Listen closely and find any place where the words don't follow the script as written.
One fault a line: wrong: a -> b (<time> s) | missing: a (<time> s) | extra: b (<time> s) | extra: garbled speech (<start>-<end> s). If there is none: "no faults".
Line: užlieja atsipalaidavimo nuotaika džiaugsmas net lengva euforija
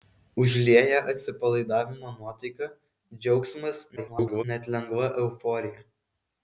extra: garbled speech (4.0-4.4 s)